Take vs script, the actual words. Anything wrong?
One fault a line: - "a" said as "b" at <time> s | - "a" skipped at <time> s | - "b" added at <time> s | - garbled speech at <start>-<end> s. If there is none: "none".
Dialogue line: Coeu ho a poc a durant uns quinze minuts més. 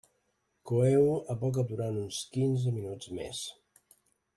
none